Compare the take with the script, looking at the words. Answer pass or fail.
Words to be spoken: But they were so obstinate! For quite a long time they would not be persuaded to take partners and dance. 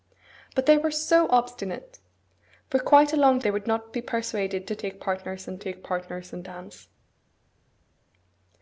fail